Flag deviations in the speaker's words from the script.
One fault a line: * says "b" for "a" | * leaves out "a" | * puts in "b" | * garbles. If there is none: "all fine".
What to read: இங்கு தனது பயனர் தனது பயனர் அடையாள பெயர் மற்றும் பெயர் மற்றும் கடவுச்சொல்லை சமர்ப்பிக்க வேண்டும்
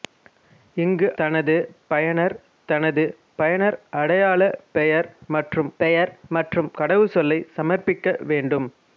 all fine